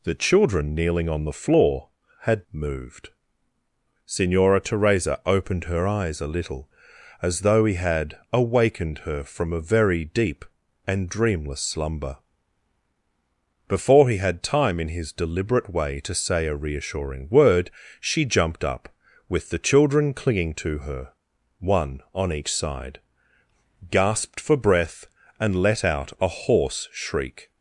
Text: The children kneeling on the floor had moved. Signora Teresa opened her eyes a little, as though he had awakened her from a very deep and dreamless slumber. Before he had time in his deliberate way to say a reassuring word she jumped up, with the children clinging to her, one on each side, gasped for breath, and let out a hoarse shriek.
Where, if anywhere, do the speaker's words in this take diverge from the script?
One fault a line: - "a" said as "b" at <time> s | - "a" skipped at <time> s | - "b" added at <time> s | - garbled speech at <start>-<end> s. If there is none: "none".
none